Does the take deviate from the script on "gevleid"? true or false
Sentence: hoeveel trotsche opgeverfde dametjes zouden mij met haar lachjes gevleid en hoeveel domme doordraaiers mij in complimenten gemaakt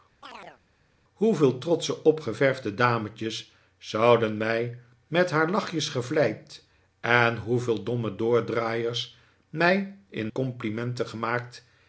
false